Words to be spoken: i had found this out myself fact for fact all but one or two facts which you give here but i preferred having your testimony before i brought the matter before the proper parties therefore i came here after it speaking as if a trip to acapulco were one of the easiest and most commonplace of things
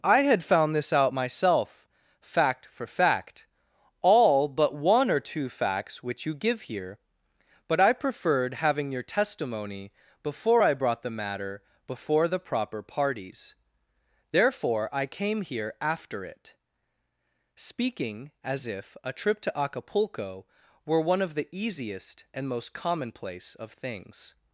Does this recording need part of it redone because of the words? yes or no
no